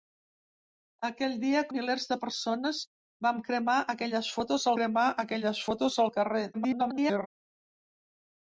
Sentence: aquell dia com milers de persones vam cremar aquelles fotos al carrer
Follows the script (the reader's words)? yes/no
no